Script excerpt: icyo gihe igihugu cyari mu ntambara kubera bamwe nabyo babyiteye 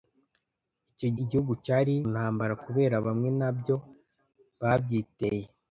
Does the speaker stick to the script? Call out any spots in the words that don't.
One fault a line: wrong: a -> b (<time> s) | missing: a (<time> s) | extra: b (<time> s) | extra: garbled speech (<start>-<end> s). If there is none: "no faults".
missing: gihe (1.1 s)
missing: mu (1.9 s)